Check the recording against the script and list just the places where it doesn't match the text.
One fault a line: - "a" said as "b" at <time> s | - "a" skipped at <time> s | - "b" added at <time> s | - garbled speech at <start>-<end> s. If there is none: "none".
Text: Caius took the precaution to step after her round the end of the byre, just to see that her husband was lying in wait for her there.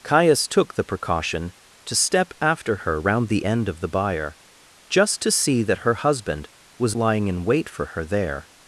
none